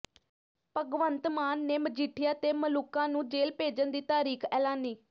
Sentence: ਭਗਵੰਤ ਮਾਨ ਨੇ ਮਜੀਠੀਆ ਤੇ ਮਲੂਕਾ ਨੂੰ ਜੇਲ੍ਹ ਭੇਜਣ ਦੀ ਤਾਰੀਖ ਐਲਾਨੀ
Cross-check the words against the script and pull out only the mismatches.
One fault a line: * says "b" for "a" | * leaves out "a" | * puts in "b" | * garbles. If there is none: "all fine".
all fine